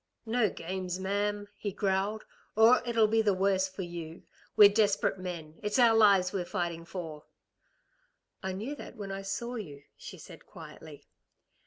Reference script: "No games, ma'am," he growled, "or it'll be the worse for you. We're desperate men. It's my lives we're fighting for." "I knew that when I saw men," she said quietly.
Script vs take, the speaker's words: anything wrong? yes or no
yes